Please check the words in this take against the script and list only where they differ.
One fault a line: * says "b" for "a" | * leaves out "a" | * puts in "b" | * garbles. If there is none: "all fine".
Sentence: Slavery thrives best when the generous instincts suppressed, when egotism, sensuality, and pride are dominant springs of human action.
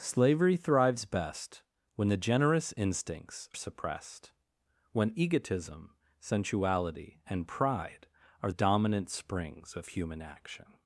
all fine